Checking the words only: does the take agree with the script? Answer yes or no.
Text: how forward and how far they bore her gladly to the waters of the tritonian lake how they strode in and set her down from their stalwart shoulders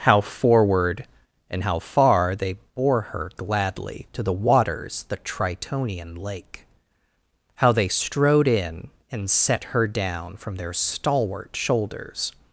no